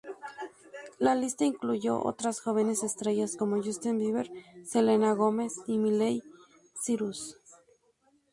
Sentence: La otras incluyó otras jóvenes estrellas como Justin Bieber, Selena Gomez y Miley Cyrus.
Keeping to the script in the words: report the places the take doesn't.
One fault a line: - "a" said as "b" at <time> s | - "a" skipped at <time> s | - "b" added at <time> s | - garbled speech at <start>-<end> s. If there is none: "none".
- "otras" said as "lista" at 1.1 s